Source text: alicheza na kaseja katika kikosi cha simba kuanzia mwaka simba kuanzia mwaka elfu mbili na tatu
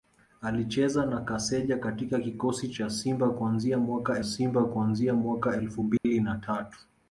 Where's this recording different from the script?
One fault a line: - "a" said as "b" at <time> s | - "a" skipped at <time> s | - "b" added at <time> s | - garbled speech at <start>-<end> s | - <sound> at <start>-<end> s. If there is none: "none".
- dropout at 6.0-6.0 s